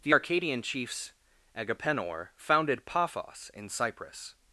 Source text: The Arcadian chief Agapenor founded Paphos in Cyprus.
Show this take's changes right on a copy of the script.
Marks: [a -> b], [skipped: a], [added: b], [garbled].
The Arcadian [chief -> chiefs] Agapenor founded Paphos in Cyprus.